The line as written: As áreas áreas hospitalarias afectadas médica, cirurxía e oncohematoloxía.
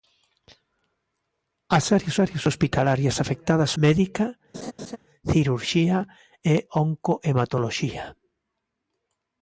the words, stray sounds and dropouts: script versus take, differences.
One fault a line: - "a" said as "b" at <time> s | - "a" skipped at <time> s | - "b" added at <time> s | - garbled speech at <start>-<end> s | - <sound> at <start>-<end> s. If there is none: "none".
- laugh at 4.5-5.0 s